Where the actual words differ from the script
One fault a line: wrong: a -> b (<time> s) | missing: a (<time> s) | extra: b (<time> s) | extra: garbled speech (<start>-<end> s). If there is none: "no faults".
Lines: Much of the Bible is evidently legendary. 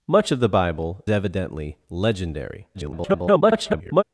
missing: is (1.0 s)
extra: garbled speech (2.7-4.0 s)